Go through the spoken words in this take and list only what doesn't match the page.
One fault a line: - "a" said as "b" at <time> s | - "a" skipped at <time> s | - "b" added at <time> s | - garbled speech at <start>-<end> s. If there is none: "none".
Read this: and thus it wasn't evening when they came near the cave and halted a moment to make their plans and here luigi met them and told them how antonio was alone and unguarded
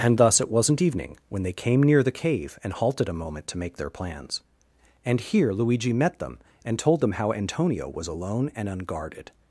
none